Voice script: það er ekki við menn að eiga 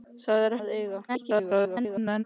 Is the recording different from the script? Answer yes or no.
yes